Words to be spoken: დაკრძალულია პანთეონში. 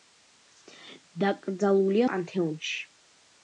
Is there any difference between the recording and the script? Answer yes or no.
no